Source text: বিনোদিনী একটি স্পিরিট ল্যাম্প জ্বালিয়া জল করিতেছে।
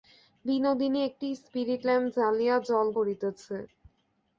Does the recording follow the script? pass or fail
pass